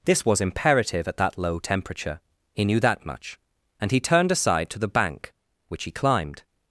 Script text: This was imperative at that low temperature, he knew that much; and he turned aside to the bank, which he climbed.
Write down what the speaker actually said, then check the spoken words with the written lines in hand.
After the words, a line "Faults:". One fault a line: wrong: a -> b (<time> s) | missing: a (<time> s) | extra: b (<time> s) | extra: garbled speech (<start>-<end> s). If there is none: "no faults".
This was imperative at that low temperature, he knew that much; and he turned aside to the bank, which he climbed.
Faults:
no faults